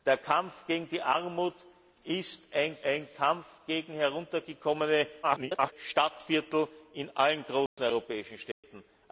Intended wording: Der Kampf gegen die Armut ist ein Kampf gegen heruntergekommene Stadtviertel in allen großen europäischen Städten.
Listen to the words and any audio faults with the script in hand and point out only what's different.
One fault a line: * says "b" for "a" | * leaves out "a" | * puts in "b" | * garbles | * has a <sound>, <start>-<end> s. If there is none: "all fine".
* puts in "ein"
* garbles
* has a dropout, 7.7-7.8 s
* has a dropout, 8.5-8.6 s